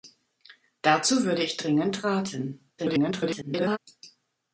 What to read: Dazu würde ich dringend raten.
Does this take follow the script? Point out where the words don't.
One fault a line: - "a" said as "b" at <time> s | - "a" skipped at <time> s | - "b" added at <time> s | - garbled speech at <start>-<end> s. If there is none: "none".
- garbled speech at 2.8-3.8 s